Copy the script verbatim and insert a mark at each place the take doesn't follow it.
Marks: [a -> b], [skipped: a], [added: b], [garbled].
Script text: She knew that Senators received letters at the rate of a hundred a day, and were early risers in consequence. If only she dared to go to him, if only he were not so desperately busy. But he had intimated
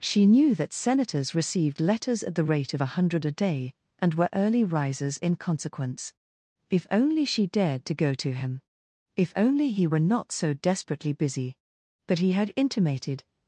She knew that Senators received letters at the rate of a hundred a day, and were early risers in consequence. If only she dared to go to him, if only he were not so desperately busy. But he had intimated